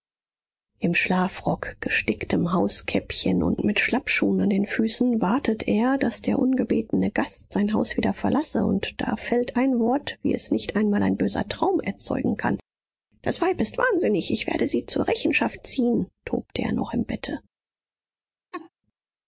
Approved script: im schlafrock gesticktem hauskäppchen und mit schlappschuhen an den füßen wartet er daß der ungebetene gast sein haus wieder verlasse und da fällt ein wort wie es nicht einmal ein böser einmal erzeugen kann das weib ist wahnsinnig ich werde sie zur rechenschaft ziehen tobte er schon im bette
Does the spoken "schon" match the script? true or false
false